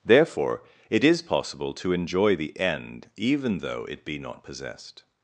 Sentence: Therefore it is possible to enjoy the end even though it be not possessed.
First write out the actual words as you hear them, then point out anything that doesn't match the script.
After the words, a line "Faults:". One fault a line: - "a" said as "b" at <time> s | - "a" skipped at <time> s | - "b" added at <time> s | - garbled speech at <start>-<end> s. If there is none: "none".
Therefore it is possible to enjoy the end even though it be not possessed.
Faults:
none